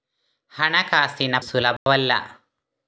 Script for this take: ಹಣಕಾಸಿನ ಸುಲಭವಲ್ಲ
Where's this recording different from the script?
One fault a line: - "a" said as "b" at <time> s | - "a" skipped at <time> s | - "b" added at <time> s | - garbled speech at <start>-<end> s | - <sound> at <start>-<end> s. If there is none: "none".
- dropout at 1.8-1.9 s